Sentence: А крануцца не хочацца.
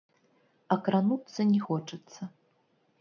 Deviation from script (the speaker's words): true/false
false